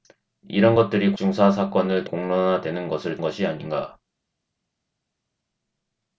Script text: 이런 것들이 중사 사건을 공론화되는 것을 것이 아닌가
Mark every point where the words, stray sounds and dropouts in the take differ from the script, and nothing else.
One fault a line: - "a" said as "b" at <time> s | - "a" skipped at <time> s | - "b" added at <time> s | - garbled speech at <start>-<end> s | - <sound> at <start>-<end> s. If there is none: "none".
none